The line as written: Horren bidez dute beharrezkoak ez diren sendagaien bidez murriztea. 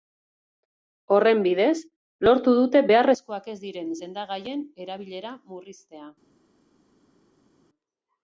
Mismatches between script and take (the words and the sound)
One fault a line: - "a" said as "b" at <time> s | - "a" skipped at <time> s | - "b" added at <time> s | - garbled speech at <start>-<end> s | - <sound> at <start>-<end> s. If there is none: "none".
- "lortu" added at 2.3 s
- "bidez" said as "erabilera" at 4.9 s